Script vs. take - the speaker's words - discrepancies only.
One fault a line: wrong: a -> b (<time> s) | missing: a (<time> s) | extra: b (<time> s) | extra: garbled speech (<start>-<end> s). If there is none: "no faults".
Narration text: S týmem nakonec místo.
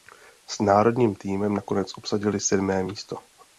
extra: národním (0.6 s)
extra: obsadili sedmé (2.0 s)